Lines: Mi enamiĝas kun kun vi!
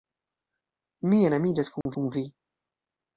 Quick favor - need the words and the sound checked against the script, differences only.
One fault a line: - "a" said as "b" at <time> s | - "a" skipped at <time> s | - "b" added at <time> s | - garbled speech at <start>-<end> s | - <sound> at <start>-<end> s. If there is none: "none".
- dropout at 1.8-1.9 s